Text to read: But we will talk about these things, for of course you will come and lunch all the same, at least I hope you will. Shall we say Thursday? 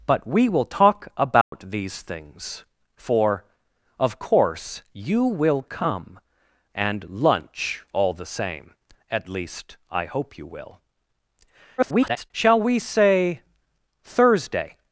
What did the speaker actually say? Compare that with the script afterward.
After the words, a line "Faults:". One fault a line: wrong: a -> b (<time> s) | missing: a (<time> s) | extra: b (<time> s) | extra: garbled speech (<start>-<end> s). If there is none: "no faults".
But we will talk about these things, for of course you will come and lunch all the same, at least I hope you will. [garbled] Shall we say Thursday?
Faults:
extra: garbled speech (11.8-12.3 s)